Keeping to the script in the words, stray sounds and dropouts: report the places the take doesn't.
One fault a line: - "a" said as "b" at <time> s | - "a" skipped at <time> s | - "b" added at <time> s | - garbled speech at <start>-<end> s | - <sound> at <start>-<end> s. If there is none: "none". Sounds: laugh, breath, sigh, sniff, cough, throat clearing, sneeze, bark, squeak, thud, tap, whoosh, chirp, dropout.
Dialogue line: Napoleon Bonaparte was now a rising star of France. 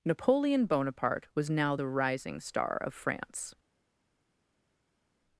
- "a" said as "the" at 1.7 s